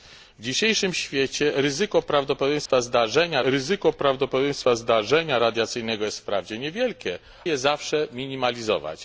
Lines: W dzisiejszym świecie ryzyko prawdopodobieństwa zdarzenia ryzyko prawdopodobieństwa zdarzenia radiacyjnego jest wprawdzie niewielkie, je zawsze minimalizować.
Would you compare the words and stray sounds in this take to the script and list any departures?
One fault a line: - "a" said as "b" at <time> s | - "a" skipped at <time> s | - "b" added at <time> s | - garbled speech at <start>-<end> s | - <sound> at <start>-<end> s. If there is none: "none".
- dropout at 2.7-2.7 s